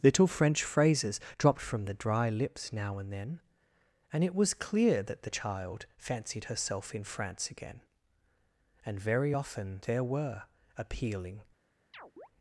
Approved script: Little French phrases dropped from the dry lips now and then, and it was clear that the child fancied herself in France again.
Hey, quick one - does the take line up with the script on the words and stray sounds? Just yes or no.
no